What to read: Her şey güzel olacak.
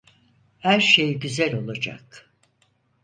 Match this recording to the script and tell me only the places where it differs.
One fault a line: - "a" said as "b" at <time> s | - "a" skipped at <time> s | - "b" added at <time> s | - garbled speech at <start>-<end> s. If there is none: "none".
none